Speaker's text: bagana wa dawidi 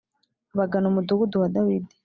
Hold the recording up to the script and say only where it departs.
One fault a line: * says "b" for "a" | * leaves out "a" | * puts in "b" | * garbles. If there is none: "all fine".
* puts in "umudugudu"